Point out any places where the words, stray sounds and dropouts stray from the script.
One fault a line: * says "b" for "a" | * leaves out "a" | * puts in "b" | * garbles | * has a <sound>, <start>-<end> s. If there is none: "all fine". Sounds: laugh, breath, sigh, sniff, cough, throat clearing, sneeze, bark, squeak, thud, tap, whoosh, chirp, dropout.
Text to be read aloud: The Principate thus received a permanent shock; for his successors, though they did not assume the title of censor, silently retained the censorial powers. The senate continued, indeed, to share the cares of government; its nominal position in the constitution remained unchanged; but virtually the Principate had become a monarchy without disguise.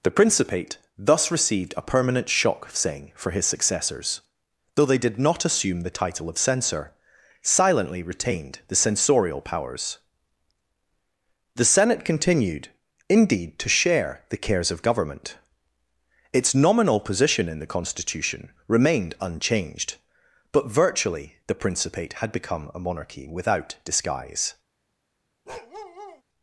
* puts in "saying"
* has a bark, 25.5-26.2 s